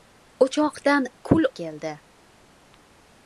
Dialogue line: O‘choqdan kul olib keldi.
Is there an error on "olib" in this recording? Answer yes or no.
yes